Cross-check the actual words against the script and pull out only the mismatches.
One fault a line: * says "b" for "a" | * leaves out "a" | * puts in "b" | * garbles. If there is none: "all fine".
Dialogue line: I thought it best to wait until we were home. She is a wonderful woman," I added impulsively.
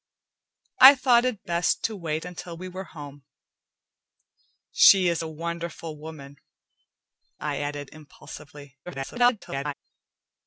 * garbles